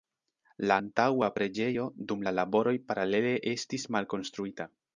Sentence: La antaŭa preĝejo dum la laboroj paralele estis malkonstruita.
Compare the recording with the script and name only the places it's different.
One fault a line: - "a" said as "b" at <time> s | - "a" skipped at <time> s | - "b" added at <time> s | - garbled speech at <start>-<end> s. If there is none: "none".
none